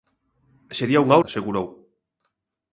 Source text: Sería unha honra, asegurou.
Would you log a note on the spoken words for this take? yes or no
yes